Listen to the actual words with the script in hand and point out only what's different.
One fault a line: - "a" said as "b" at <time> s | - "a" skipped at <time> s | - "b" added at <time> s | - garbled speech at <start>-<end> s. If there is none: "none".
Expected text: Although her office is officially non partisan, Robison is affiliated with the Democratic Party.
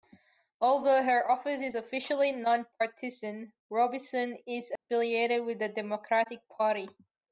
none